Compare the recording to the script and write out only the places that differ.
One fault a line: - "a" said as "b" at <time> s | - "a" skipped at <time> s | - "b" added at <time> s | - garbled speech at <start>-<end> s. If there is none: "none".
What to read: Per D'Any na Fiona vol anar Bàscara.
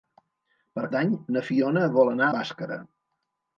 none